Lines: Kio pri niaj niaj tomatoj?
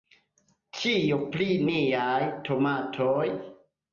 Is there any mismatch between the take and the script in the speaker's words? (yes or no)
yes